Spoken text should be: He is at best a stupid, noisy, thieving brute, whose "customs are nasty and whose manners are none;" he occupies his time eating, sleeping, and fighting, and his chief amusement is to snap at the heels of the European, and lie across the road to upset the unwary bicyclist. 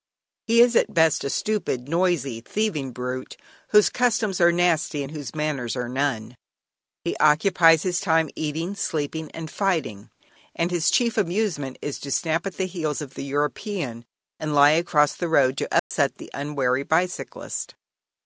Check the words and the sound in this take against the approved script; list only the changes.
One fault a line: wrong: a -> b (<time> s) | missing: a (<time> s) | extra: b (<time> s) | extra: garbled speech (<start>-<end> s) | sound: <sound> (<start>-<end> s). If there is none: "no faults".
sound: dropout (15.8-15.9 s)